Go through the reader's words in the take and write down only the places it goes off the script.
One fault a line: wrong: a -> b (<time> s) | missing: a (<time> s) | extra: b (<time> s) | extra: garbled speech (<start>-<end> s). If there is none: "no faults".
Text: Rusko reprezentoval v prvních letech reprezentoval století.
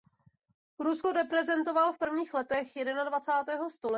wrong: reprezentoval -> jednadvacátého (2.7 s)